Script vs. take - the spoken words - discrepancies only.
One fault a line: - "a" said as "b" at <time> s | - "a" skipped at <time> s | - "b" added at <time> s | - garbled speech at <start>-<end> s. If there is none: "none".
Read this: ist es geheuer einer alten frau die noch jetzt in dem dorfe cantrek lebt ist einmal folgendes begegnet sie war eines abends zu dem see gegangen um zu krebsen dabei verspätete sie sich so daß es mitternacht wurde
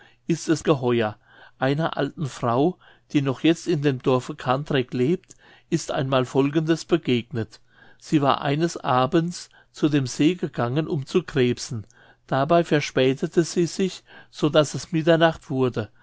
none